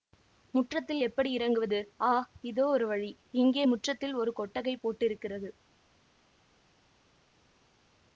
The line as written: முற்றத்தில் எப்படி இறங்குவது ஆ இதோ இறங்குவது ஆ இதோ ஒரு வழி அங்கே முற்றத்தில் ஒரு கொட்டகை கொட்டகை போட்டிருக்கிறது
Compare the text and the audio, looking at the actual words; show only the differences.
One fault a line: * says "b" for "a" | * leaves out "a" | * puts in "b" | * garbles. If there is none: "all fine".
* leaves out "இறங்குவது ஆ இதோ"
* says "இங்கே" for "அங்கே"
* leaves out "கொட்டகை"